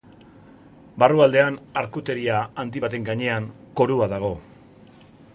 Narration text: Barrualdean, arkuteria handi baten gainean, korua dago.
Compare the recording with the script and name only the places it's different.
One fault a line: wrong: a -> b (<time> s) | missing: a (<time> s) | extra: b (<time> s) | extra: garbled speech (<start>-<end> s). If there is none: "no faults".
no faults